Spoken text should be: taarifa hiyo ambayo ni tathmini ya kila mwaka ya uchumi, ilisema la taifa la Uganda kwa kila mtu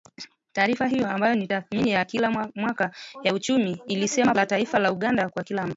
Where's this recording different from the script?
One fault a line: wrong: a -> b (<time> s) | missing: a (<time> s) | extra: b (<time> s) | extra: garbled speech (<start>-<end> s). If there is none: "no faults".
no faults